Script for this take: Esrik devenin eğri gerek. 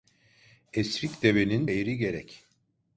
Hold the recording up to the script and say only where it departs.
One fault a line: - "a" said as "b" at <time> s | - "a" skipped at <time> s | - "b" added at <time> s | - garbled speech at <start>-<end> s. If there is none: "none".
none